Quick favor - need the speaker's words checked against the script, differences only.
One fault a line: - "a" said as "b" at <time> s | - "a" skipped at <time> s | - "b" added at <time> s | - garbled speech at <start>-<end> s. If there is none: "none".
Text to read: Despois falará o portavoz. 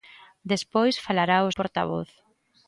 none